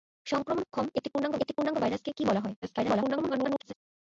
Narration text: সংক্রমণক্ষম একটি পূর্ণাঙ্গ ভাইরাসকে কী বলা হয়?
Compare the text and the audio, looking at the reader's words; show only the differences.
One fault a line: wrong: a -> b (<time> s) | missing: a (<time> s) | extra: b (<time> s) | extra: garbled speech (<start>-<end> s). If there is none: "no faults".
extra: একটি পূর্ণাঙ্গ (1.4 s)
extra: garbled speech (2.6-3.7 s)